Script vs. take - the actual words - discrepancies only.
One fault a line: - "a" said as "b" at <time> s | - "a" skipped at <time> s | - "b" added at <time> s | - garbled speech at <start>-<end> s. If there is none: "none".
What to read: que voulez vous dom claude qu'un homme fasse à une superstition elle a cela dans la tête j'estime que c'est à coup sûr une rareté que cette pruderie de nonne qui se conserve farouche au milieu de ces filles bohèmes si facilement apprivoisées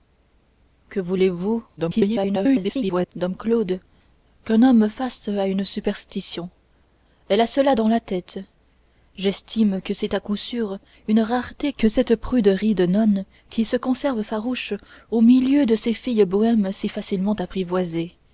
- garbled speech at 1.8-3.1 s